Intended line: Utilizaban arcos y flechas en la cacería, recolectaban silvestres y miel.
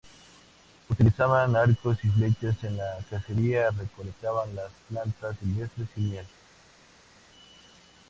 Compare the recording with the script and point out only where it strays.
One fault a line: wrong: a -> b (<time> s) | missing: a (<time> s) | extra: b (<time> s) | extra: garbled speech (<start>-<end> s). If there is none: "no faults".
extra: las plantas (4.5 s)